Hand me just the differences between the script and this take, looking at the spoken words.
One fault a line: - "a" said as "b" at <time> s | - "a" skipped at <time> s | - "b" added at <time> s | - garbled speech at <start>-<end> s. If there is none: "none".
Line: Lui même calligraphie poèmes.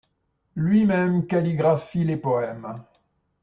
- "les" added at 2.1 s